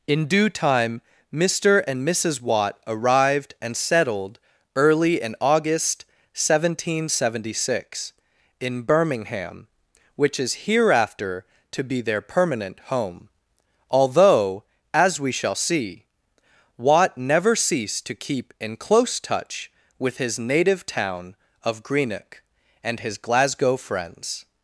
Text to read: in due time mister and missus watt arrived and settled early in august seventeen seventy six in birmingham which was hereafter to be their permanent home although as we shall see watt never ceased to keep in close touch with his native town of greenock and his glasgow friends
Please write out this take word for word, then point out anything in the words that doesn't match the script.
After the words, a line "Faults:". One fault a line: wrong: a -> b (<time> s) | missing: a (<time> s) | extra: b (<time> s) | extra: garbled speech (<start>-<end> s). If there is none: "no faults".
in due time mister and missus watt arrived and settled early in august seventeen seventy six in birmingham which is hereafter to be their permanent home although as we shall see watt never ceased to keep in close touch with his native town of greenock and his glasgow friends
Faults:
wrong: was -> is (10.4 s)